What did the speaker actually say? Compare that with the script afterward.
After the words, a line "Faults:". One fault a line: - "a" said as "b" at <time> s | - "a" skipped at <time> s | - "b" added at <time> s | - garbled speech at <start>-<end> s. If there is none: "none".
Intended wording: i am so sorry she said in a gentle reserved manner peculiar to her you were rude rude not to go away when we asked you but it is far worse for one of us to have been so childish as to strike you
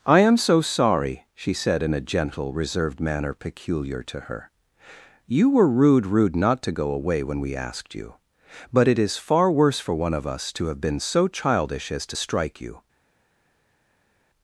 i am so sorry she said in a gentle reserved manner peculiar to her you were rude rude not to go away when we asked you but it is far worse for one of us to have been so childish as to strike you
Faults:
none